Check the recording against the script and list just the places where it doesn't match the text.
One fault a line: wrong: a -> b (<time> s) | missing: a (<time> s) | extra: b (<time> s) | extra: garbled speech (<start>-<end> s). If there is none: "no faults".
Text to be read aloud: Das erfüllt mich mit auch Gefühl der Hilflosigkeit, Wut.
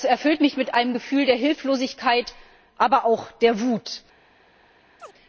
wrong: auch -> einem (0.7 s)
extra: aber auch der (2.8 s)